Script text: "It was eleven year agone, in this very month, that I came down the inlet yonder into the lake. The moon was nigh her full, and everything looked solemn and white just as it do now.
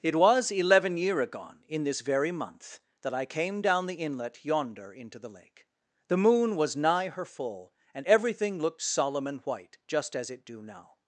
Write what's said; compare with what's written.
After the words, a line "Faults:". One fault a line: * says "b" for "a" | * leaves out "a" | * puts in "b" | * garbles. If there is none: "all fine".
"It was eleven year agone, in this very month, that I came down the inlet yonder into the lake. The moon was nigh her full, and everything looked solemn and white just as it do now.
Faults:
all fine